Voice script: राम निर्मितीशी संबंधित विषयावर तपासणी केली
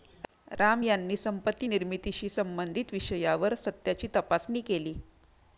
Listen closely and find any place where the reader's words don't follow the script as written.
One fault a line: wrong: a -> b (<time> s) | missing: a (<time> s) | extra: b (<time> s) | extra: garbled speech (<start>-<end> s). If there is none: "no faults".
extra: यांनी संपत्ती (0.8 s)
extra: सत्याची (3.6 s)